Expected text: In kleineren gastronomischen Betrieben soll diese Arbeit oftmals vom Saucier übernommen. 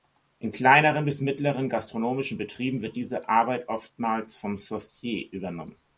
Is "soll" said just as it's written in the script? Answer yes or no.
no